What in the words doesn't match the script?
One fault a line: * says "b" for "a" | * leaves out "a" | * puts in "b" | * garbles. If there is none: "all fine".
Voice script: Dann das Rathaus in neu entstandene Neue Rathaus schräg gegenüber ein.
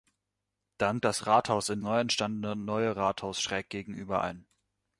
all fine